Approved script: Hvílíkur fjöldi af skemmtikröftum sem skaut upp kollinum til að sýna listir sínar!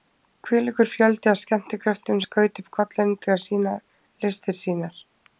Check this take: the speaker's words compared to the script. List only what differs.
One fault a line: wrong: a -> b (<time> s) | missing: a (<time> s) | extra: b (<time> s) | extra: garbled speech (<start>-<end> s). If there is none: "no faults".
missing: sem (2.2 s)